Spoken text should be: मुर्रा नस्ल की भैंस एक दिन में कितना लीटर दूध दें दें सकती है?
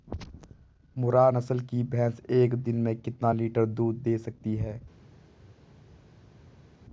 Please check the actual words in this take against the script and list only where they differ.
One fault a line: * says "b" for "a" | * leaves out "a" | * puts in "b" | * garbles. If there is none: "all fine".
* leaves out "दें"